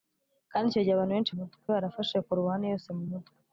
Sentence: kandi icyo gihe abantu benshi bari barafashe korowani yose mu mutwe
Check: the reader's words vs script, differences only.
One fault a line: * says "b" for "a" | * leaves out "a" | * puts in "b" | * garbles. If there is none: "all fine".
* says "mutwe" for "bari"